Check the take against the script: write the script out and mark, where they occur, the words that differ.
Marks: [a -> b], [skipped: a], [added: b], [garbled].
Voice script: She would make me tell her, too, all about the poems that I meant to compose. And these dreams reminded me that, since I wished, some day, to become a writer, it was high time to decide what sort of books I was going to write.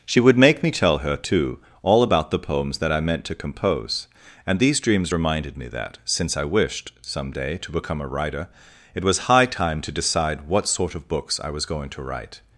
She would make me tell her, too, all about the poems that I meant to compose. And these dreams reminded me that, since I wished, some day, to become a writer, it was high time to decide what sort of books I was going to write.